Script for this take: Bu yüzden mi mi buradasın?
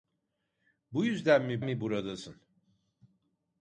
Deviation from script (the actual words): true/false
false